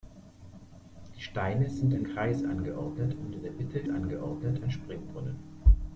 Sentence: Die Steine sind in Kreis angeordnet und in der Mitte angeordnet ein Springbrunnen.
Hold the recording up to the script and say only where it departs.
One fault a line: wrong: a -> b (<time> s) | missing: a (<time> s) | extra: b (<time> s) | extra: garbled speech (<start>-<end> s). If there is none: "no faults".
no faults